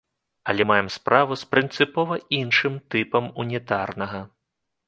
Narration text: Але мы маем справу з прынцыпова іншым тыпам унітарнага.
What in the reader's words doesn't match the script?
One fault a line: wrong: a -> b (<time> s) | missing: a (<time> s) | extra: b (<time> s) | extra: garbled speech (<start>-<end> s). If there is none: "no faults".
missing: мы (0.6 s)